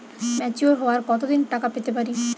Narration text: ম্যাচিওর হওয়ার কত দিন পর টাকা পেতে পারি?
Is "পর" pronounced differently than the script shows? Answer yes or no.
yes